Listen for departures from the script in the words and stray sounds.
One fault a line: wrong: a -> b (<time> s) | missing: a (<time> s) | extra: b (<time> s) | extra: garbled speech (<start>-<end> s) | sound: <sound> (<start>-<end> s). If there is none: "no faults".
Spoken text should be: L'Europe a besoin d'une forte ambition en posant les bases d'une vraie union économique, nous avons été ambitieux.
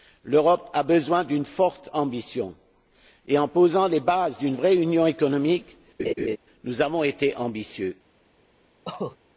extra: et (3.3 s)
sound: laugh (6.0-6.4 s)
sound: cough (8.8-9.2 s)